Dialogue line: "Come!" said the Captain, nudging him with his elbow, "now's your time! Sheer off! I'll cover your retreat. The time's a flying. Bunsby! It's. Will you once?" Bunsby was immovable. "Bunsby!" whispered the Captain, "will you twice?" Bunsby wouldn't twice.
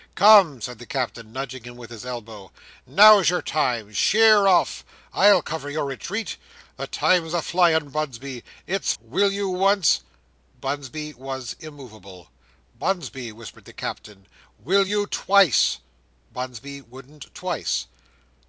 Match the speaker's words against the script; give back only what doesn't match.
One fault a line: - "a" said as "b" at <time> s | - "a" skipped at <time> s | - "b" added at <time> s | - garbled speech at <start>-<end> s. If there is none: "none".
none